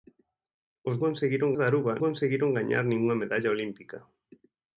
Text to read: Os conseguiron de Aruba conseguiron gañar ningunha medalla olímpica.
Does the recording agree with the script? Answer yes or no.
yes